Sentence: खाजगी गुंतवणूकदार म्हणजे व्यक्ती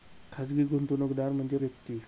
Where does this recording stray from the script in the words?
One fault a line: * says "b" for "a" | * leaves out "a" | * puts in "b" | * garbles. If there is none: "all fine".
all fine